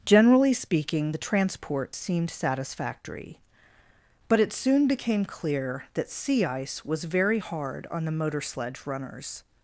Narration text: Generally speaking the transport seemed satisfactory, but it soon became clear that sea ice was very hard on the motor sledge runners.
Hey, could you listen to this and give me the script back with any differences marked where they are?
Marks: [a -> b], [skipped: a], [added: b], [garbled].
Generally speaking the transport seemed satisfactory, but it soon became clear that sea ice was very hard on the motor sledge runners.